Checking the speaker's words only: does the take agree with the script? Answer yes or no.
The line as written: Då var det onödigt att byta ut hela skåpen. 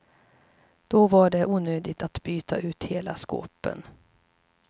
yes